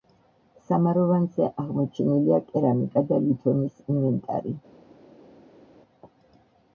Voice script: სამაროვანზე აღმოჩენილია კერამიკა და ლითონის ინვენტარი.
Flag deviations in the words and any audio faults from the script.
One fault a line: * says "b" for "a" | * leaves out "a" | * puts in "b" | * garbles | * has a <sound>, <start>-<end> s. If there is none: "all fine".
all fine